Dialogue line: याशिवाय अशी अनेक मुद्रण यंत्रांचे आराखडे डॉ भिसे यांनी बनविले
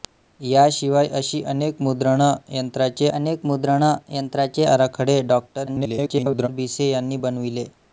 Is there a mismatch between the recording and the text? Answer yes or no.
yes